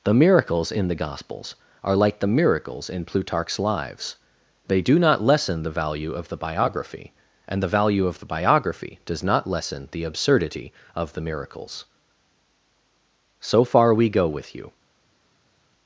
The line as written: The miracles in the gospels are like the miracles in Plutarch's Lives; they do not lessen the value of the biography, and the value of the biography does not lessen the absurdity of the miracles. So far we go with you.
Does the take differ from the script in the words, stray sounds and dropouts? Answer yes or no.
no